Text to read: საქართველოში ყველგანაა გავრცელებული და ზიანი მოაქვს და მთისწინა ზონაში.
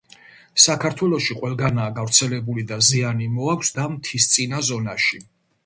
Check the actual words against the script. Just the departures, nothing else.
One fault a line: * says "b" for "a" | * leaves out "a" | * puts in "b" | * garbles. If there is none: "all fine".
all fine